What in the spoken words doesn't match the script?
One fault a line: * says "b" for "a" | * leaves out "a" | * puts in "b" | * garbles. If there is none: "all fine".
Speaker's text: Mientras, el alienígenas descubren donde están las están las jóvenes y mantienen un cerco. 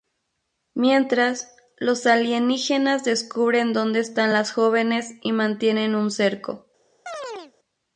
* says "los" for "el"
* leaves out "están las"